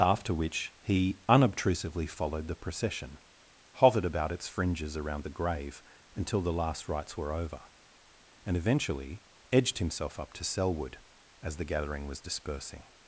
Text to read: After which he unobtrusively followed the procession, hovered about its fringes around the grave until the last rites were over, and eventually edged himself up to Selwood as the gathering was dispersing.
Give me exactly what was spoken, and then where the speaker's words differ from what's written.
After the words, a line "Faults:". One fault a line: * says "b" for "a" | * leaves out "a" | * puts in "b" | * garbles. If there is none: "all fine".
After which he unobtrusively followed the procession, hovered about its fringes around the grave until the last rites were over, and eventually edged himself up to Selwood as the gathering was dispersing.
Faults:
all fine